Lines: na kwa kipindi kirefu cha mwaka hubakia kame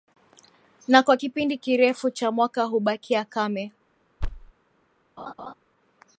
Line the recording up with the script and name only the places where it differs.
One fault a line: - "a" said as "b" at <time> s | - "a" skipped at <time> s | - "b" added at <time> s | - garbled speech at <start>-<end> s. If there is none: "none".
none